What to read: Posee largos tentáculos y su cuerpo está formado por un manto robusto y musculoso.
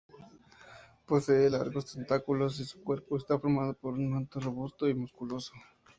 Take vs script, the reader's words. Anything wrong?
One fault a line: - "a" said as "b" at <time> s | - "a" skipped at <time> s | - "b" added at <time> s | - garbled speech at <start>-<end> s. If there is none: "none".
none